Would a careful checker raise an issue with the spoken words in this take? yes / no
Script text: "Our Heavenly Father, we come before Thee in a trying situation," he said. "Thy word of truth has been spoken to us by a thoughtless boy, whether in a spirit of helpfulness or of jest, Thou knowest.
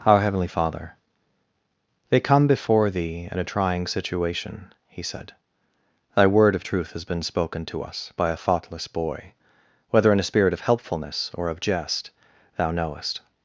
yes